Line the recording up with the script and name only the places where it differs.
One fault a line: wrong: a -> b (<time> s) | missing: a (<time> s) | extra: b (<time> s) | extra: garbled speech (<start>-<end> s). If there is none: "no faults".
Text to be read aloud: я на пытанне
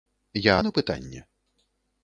no faults